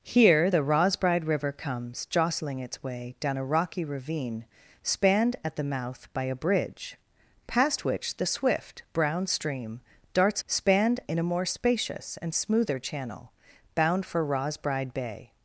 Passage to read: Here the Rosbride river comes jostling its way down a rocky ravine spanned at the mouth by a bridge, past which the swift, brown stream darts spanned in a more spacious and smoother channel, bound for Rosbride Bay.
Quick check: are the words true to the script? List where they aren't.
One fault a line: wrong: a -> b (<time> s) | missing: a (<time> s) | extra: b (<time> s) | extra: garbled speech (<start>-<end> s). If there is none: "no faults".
no faults